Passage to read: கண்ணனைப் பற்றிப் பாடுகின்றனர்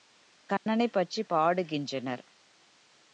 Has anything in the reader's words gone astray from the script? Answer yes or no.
no